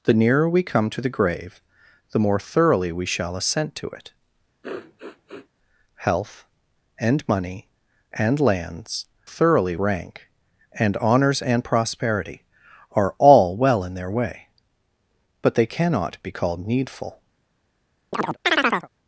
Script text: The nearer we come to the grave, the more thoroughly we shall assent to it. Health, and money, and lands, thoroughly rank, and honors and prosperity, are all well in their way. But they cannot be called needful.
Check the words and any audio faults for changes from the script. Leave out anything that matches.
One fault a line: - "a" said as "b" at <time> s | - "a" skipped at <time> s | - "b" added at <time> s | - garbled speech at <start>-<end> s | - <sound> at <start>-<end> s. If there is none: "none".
- sniff at 4.6-5.5 s
- chirp at 18.1-18.9 s